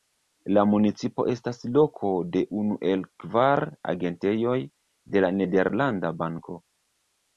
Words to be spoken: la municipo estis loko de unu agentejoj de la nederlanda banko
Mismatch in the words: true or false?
true